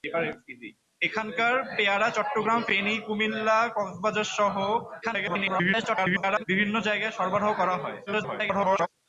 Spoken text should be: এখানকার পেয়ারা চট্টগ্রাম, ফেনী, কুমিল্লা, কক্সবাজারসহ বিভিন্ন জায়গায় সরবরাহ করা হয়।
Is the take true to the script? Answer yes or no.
no